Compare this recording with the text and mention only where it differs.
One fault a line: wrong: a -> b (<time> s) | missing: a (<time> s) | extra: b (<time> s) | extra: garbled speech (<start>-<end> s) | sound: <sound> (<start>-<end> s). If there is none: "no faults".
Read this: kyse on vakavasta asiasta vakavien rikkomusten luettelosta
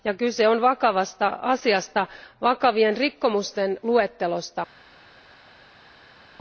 no faults